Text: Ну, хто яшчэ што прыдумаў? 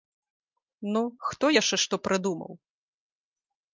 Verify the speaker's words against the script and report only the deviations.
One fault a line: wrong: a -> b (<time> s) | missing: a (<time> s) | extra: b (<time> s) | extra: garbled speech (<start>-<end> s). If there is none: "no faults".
no faults